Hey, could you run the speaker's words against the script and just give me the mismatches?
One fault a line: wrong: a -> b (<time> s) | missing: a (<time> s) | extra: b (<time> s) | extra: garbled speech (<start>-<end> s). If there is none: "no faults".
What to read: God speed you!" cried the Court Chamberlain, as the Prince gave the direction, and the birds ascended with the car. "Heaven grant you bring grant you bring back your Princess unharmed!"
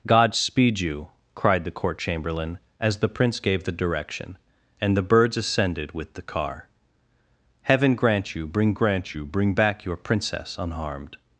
no faults